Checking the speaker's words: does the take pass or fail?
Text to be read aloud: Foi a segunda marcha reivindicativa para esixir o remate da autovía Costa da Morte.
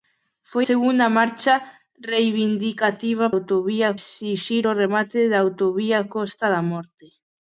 fail